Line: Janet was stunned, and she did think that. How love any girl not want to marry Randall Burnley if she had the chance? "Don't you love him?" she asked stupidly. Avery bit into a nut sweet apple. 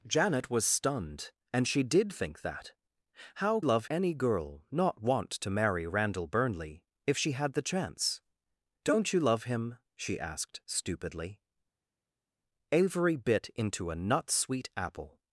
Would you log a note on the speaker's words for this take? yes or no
no